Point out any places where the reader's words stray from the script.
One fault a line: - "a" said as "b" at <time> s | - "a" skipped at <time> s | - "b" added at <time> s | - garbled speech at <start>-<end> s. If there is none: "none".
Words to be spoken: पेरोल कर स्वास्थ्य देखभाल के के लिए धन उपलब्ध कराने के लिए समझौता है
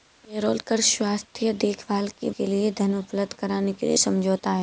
none